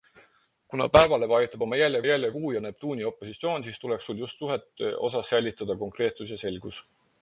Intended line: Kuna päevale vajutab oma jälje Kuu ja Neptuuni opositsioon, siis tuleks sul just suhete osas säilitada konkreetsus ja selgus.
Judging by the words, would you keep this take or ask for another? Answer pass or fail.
fail